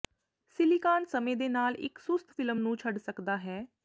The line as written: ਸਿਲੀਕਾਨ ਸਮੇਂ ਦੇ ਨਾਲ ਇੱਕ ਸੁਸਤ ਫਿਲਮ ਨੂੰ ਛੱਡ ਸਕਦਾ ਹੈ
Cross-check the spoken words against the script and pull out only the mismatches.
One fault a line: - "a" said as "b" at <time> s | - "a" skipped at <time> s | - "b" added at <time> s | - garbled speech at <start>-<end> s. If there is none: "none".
none